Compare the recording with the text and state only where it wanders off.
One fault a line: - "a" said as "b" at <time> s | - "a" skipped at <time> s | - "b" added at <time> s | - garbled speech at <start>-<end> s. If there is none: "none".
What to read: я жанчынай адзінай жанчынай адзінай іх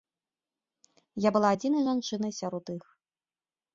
- "жанчынай" said as "была" at 1.4 s
- "адзінай" said as "сярод" at 2.4 s